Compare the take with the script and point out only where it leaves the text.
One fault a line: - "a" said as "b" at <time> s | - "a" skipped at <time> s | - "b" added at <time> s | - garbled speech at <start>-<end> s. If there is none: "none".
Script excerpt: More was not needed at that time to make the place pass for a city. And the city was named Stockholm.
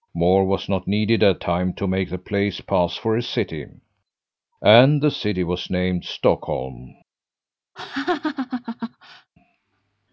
- "that" skipped at 1.4 s